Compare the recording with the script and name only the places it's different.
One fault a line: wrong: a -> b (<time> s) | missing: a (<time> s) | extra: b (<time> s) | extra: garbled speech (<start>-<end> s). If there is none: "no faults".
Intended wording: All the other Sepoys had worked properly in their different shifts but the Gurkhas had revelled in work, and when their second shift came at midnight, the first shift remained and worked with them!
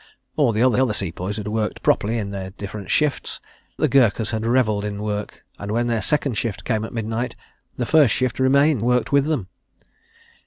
extra: other (0.8 s)
missing: but (3.4 s)
missing: and (8.8 s)